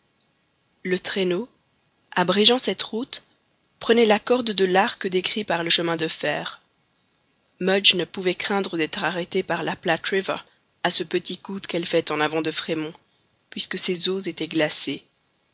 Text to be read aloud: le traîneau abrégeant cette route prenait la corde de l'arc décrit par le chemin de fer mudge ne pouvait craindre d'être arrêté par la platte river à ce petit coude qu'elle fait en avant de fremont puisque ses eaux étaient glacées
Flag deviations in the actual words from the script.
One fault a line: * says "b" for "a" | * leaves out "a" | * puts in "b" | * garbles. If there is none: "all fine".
all fine